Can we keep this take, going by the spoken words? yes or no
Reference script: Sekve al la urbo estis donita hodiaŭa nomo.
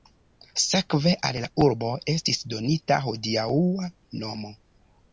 yes